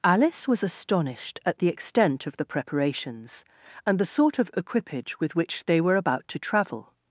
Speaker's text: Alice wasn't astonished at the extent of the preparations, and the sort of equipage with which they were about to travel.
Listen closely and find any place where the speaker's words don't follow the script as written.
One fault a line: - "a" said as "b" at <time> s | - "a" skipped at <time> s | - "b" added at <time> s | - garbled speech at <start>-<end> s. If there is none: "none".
- "wasn't" said as "was" at 0.5 s